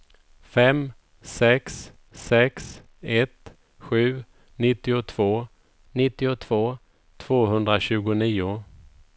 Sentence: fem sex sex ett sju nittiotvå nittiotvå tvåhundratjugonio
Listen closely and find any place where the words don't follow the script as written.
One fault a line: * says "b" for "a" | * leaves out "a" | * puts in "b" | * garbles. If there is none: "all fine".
all fine